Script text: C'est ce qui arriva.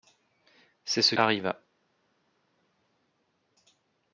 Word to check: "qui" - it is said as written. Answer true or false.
false